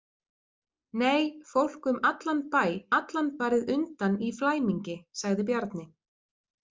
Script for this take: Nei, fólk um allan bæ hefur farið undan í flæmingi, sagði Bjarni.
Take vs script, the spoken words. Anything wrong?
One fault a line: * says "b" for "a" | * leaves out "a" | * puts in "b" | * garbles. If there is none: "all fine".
* says "allan" for "hefur"